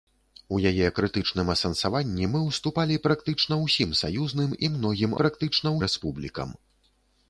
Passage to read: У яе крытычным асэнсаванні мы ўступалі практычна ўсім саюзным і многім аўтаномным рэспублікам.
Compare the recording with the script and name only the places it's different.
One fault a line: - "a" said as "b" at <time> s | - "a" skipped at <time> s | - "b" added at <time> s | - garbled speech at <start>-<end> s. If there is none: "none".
- "аўтаномным" said as "практычна" at 5.2 s